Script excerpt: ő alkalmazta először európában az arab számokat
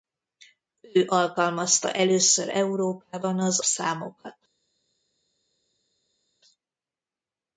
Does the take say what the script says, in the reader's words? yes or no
no